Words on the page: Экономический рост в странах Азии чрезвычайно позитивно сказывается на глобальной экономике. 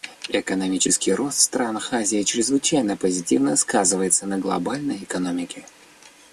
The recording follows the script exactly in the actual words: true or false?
true